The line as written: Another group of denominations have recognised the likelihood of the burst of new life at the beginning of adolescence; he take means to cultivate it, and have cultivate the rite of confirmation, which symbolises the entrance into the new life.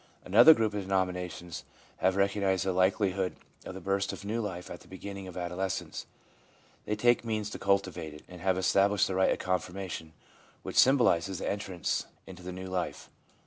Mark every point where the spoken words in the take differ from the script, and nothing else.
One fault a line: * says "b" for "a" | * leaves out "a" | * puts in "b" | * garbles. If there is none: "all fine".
* says "they" for "he"
* says "established" for "cultivate"